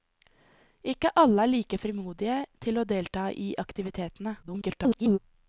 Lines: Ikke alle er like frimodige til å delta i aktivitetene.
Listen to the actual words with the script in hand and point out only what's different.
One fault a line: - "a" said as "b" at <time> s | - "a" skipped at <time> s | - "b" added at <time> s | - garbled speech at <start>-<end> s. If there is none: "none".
- garbled speech at 4.4-5.2 s